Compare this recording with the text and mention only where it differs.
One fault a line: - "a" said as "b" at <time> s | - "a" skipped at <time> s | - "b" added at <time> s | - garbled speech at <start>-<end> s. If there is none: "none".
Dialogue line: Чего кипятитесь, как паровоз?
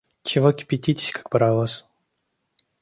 none